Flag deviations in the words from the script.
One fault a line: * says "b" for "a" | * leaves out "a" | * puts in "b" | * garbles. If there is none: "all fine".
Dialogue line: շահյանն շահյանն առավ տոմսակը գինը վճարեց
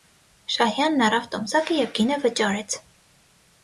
* leaves out "շահյանն"
* puts in "և"